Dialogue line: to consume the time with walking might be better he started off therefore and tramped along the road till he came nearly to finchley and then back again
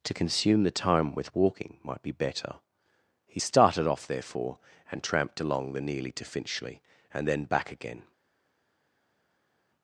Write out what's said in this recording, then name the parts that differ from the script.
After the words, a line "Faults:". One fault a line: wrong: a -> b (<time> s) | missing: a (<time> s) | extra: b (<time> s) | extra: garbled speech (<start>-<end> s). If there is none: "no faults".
to consume the time with walking might be better he started off therefore and tramped along the nearly to finchley and then back again
Faults:
missing: road till he came (5.8 s)